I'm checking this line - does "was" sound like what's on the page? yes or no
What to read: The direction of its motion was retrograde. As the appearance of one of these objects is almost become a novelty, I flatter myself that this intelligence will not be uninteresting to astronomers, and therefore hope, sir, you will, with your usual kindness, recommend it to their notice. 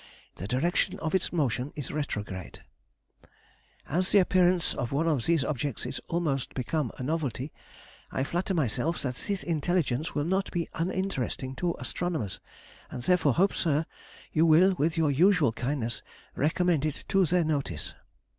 no